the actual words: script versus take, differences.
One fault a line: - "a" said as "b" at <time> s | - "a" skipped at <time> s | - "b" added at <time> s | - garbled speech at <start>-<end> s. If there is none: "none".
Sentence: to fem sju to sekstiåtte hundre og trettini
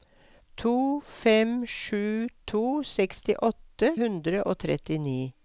none